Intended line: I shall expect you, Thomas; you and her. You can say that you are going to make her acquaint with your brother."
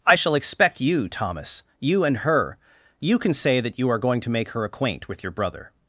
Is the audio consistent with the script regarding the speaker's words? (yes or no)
yes